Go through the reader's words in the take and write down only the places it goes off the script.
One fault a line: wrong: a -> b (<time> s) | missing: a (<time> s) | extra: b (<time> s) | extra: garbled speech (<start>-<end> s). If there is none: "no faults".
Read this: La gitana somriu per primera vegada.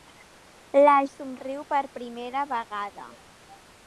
missing: gitana (0.9 s)